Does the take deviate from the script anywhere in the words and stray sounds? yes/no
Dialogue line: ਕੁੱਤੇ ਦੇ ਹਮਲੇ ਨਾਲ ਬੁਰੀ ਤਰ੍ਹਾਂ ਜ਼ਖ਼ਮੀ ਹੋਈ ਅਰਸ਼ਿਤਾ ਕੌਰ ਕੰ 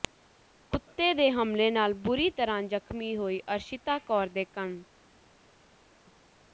yes